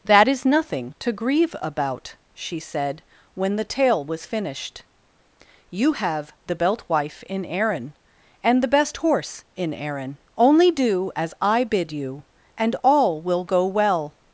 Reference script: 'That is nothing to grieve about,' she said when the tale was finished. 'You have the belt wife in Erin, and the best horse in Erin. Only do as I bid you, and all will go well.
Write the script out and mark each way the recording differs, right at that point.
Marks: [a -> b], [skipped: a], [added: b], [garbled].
'That is nothing to grieve about,' she said when the tale was finished. 'You have the belt wife in Erin, and the best horse in Erin. Only do as I bid you, and all will go well.